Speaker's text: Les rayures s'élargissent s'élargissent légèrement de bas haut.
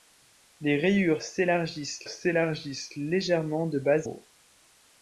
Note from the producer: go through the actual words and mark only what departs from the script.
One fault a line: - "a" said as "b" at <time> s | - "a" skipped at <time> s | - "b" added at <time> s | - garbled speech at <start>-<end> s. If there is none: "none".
none